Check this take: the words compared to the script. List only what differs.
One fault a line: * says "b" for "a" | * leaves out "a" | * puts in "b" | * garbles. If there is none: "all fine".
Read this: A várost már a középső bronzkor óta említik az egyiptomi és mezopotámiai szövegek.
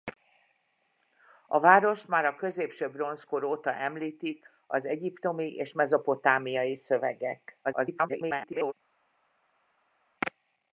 * garbles